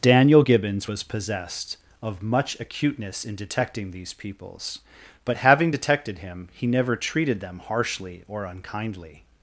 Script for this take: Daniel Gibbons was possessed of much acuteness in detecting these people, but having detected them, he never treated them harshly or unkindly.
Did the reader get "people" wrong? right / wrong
wrong